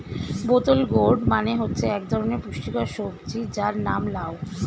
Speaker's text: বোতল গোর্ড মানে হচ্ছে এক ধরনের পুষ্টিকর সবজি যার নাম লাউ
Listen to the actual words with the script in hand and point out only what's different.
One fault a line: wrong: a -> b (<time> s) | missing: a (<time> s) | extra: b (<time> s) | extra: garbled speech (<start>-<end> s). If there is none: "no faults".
no faults